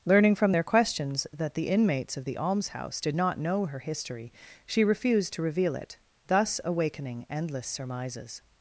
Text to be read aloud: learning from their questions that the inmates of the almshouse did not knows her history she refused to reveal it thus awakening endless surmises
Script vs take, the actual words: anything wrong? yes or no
yes